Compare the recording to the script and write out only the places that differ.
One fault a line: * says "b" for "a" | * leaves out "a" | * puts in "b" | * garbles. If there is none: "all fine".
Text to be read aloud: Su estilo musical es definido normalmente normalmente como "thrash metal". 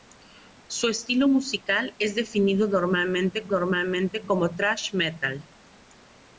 all fine